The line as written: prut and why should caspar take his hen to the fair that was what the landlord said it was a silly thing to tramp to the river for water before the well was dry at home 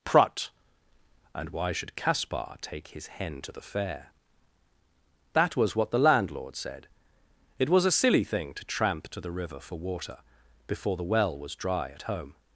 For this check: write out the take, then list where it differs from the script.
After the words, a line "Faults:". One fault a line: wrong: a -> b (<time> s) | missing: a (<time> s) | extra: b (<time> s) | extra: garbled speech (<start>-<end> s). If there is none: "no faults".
prut and why should caspar take his hen to the fair that was what the landlord said it was a silly thing to tramp to the river for water before the well was dry at home
Faults:
no faults